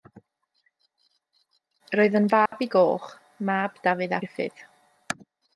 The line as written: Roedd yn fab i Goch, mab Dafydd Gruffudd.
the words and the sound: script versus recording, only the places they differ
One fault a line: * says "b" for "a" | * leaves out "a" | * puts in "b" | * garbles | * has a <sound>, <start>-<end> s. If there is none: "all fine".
* has a dropout, 2.5-2.5 s